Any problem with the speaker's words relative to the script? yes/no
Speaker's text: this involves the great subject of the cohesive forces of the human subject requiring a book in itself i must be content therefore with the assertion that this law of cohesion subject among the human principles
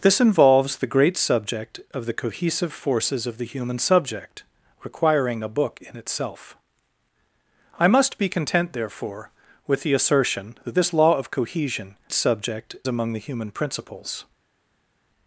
no